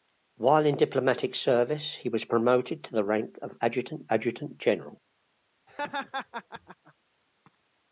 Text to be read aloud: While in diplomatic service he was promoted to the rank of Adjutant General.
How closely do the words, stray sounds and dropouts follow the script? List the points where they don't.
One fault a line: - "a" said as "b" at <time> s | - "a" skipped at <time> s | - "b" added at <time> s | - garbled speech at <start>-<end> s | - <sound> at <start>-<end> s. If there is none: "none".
- "Adjutant" added at 4.1 s
- laugh at 5.7-6.9 s